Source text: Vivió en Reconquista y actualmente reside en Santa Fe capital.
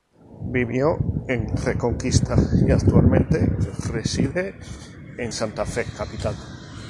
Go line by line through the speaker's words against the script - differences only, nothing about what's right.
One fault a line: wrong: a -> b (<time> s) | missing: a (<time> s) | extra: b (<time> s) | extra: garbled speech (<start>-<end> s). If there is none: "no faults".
no faults